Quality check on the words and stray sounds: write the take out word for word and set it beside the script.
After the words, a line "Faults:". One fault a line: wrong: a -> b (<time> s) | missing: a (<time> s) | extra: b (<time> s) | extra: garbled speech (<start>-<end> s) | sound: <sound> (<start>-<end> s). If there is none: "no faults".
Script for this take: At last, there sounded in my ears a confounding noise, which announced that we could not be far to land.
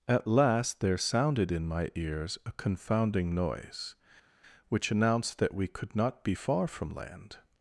At last, there sounded in my ears a confounding noise, which announced that we could not be far from land.
Faults:
wrong: to -> from (6.7 s)